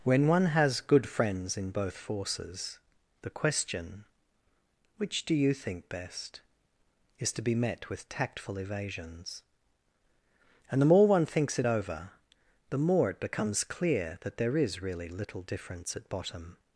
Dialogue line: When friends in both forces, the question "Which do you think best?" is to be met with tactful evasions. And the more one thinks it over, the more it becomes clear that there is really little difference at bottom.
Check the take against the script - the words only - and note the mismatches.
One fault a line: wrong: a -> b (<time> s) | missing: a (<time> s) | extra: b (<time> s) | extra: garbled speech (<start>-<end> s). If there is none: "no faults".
extra: one has good (0.3 s)